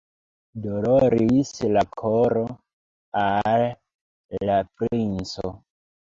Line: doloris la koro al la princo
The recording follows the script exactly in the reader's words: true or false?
true